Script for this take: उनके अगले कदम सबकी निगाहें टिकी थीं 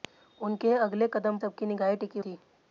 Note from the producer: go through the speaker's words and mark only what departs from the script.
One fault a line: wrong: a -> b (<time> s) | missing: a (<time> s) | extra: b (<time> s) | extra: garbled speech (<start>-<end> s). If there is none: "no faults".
no faults